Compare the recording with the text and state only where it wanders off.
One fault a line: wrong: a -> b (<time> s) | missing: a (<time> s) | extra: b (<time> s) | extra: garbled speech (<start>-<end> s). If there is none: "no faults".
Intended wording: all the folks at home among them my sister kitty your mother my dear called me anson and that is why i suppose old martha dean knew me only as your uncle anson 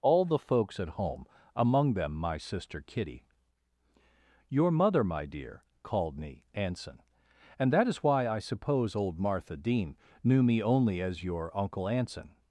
no faults